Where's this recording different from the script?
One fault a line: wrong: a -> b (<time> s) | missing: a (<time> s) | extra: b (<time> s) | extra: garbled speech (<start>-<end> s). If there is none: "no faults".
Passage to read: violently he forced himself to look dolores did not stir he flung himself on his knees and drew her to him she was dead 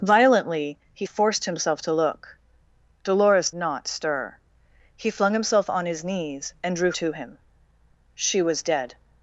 missing: did (3.5 s)
missing: her (6.9 s)